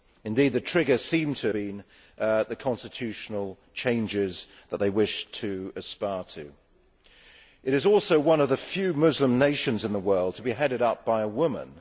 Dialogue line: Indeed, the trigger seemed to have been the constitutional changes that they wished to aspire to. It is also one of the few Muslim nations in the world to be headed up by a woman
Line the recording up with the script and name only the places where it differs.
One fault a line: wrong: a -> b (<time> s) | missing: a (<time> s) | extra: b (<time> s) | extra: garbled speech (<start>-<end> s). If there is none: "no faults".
missing: have (1.5 s)